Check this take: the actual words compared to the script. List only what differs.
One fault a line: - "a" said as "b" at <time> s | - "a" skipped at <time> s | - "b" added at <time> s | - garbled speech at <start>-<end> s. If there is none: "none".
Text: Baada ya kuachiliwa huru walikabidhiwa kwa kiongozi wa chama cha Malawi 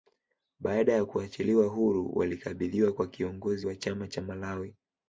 none